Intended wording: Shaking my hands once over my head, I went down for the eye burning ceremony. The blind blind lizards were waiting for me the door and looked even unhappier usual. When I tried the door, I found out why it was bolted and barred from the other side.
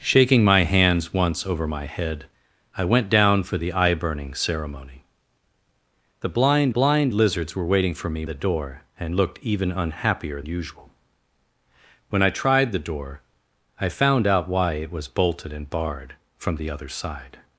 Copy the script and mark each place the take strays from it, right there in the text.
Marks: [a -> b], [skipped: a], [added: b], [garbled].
Shaking my hands once over my head, I went down for the eye burning ceremony. The blind blind lizards were waiting for me the door and looked even unhappier usual. When I tried the door, I found out why it was bolted and barred from the other side.